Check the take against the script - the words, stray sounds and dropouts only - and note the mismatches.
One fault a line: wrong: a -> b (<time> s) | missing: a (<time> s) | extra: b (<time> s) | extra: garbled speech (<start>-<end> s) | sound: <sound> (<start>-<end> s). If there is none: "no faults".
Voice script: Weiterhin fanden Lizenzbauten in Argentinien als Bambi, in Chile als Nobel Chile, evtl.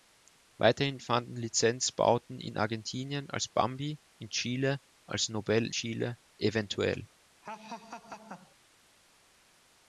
sound: laugh (7.4-8.6 s)